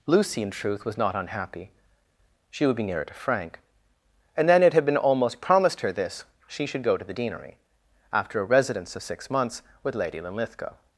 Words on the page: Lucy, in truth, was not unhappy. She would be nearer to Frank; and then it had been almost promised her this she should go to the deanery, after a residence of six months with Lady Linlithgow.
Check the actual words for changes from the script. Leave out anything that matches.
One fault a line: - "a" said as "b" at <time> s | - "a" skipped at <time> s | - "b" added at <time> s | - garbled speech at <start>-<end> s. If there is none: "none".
none